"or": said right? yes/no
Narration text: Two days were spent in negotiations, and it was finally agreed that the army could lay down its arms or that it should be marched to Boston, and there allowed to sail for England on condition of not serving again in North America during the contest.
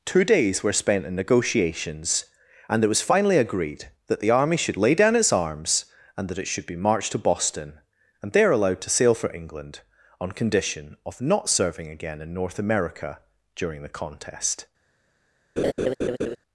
no